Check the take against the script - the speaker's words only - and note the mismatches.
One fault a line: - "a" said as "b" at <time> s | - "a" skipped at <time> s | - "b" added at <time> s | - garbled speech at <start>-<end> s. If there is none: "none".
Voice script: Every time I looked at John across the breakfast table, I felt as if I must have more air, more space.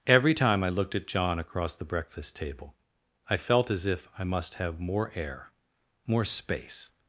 none